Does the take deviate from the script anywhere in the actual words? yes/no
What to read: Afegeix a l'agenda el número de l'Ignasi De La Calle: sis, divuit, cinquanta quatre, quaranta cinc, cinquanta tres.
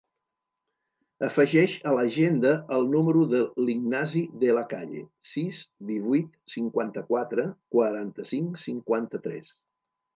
no